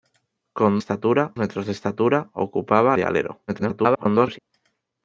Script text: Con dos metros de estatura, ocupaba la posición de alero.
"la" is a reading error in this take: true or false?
true